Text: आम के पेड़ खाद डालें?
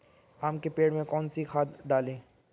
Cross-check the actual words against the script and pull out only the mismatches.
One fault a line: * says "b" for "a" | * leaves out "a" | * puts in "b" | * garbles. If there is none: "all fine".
* puts in "में कौन सी"